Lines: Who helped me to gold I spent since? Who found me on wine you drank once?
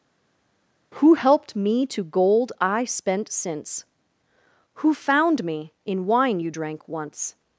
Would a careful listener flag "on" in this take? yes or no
yes